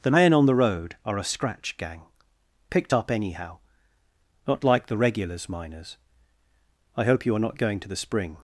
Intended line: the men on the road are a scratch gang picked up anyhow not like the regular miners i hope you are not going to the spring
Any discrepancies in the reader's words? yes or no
yes